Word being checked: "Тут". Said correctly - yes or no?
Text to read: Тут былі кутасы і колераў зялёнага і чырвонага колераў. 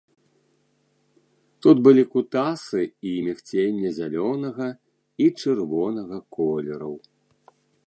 yes